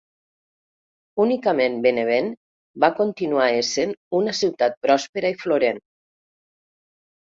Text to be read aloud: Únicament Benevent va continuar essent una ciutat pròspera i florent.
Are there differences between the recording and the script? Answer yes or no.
no